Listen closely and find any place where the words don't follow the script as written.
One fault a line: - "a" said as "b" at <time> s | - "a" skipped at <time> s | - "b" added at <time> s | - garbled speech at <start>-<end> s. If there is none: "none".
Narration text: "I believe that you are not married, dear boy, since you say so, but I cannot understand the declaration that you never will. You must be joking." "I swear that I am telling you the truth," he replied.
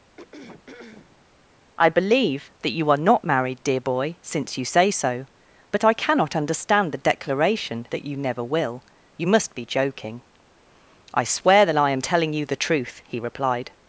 none